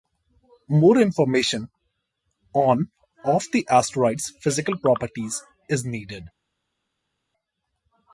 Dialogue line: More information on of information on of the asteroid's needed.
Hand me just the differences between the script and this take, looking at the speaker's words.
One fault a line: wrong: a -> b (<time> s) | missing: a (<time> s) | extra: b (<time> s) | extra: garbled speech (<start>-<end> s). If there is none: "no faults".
wrong: information on of the asteroid's -> the asteroid's physical properties is (3.5 s)